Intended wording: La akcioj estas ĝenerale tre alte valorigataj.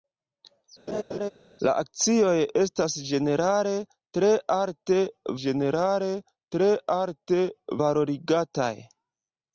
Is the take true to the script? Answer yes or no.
no